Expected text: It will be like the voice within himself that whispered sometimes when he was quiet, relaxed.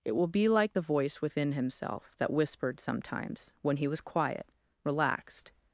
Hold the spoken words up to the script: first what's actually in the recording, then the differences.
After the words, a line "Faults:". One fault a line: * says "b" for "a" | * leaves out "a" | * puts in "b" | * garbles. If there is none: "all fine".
It will be like the voice within himself that whispered sometimes when he was quiet, relaxed.
Faults:
all fine